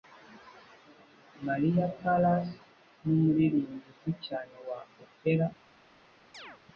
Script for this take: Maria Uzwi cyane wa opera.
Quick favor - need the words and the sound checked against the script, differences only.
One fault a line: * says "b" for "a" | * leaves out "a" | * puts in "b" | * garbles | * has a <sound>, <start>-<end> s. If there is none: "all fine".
* puts in "Callas numuririmbyi"
* has a chirp, 6.3-6.6 s